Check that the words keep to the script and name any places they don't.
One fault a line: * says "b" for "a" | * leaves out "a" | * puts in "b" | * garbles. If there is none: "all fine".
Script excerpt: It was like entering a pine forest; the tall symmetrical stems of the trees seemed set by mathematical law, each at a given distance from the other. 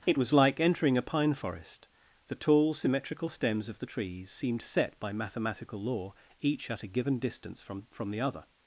* puts in "from"